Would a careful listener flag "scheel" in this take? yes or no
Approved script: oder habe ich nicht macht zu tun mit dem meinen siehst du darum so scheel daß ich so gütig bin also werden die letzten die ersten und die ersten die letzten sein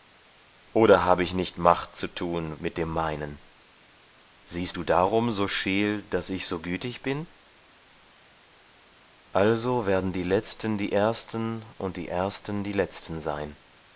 no